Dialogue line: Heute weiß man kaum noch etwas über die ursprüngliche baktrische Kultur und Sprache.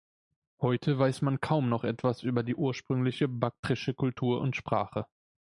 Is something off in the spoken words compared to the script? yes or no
no